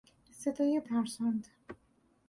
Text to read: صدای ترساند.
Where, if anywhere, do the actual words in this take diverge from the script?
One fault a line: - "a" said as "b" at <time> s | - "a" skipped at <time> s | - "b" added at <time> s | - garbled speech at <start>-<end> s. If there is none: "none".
none